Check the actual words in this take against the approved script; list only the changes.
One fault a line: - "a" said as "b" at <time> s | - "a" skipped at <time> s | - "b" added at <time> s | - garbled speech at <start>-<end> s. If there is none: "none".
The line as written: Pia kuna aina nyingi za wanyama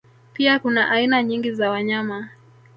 none